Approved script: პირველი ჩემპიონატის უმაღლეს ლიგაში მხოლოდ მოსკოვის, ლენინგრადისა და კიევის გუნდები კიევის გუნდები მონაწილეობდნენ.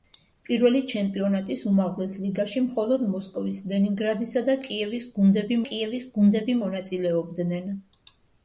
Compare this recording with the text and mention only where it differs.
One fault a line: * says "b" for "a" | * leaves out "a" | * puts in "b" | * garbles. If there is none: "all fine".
all fine